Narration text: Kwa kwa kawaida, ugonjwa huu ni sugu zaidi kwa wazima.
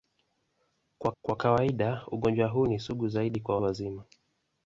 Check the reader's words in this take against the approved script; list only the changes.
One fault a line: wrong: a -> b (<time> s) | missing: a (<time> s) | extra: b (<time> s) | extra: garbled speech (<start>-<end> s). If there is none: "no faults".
no faults